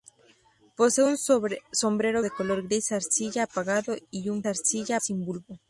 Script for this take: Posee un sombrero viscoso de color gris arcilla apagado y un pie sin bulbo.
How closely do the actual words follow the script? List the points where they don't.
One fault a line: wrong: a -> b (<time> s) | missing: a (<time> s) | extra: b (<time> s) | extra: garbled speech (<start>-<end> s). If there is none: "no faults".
missing: viscoso (2.2 s)
wrong: pie -> arcilla (4.4 s)